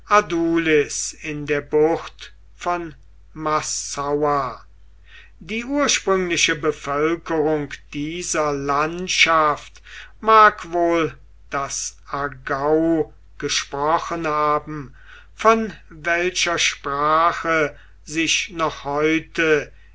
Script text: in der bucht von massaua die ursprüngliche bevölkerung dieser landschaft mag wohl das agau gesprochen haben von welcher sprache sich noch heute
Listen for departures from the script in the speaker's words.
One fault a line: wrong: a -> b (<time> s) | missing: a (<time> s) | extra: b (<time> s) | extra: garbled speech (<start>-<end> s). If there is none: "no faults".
no faults